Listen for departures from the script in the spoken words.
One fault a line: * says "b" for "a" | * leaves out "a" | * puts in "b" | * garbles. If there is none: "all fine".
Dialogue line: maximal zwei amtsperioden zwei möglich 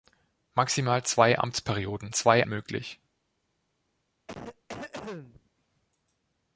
all fine